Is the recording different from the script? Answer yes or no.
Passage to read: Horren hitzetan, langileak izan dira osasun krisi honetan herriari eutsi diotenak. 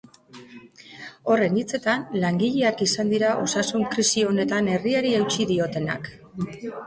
no